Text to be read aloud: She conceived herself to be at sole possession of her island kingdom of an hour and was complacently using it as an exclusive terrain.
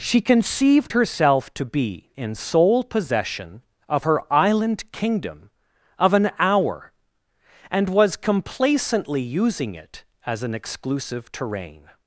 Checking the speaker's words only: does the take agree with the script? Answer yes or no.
no